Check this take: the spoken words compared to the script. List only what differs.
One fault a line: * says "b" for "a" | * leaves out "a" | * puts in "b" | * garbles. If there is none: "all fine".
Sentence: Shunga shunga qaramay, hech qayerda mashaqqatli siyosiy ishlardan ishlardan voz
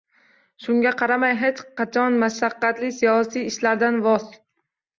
* leaves out "shunga"
* says "qachon" for "qayerda"
* leaves out "ishlardan"